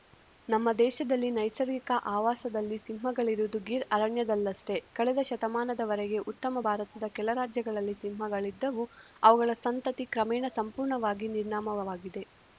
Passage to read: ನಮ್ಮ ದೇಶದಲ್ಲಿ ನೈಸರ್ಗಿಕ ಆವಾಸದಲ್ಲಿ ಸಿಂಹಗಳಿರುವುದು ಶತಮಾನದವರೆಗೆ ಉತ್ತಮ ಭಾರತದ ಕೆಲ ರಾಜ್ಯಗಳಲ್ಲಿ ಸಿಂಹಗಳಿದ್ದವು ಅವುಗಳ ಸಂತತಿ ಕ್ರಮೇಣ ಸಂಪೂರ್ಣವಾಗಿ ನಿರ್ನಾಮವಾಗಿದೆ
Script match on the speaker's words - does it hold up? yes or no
no